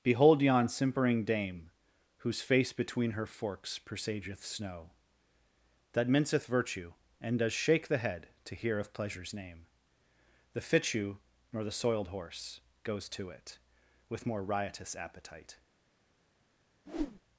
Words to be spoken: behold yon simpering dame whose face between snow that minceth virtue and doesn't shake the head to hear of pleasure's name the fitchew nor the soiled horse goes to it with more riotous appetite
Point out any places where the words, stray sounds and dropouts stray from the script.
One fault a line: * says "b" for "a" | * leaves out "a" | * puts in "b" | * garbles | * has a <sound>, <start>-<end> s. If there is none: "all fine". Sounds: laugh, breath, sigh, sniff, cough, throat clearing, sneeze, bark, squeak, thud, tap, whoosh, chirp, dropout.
* puts in "her forks presageth"
* says "does" for "doesn't"
* has a whoosh, 16.9-17.2 s